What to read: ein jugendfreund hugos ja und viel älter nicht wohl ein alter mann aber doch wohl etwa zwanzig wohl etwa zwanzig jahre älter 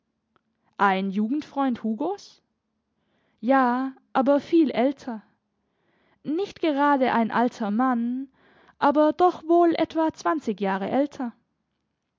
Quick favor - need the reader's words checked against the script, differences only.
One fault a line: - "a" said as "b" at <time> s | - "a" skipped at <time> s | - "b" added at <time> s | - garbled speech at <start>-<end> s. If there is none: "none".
- "und" said as "aber" at 4.1 s
- "wohl" said as "gerade" at 6.6 s
- "wohl etwa zwanzig" skipped at 10.6 s